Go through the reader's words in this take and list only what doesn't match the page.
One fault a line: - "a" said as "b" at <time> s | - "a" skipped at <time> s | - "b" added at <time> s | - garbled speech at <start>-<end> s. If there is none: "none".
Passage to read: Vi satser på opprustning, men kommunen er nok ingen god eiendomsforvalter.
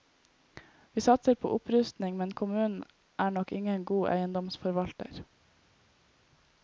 none